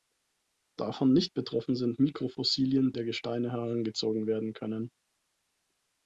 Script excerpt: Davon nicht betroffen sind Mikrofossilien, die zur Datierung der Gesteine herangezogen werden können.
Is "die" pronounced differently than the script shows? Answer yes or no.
yes